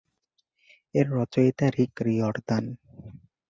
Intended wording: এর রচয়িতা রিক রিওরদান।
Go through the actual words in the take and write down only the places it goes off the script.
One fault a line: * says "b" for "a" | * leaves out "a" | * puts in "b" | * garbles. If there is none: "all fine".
all fine